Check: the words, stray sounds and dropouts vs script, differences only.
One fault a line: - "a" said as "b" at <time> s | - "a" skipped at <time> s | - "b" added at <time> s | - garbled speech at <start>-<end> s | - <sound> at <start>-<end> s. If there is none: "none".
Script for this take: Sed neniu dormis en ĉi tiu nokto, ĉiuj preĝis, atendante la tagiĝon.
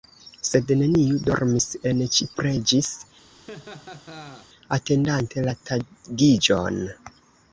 - "tiu nokto ĉiuj" skipped at 2.3 s
- laugh at 3.3-4.5 s